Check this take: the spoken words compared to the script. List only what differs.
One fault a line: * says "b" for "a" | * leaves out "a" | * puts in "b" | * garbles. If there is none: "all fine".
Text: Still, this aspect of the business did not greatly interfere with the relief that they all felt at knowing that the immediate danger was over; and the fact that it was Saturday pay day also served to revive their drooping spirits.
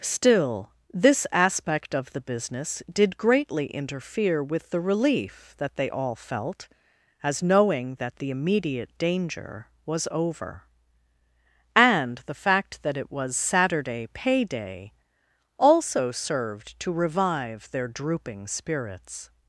* leaves out "not"
* says "as" for "at"